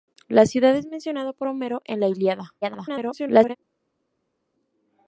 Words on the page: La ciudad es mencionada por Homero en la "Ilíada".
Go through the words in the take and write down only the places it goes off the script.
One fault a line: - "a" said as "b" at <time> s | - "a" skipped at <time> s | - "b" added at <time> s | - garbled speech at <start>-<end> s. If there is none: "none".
- garbled speech at 2.6-3.6 s